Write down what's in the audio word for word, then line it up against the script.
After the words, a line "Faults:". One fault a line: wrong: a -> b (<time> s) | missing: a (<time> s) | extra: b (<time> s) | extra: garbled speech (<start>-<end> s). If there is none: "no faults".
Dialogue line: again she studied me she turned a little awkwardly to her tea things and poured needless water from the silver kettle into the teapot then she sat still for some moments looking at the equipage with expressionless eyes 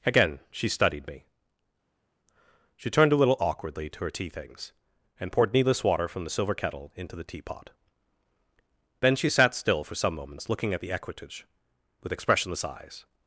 again she studied me she turned a little awkwardly to her tea things and poured needless water from the silver kettle into the teapot then she sat still for some moments looking at the equipage with expressionless eyes
Faults:
no faults